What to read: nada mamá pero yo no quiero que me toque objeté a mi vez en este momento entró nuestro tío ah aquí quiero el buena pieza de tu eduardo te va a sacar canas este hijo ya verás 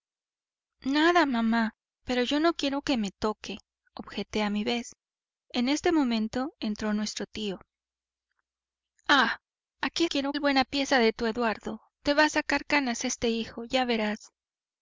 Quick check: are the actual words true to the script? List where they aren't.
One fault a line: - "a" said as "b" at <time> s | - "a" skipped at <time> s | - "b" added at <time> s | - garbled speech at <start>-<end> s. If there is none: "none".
none